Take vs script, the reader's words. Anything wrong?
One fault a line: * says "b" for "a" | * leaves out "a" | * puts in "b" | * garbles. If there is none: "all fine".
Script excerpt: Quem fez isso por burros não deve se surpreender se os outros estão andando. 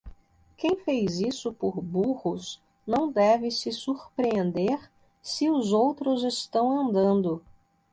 all fine